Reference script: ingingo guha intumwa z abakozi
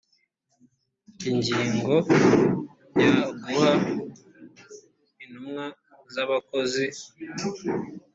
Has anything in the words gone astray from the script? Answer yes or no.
yes